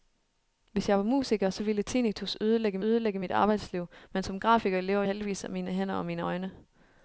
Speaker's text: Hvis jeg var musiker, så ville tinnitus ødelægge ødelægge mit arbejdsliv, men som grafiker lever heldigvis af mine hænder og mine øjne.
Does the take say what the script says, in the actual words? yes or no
yes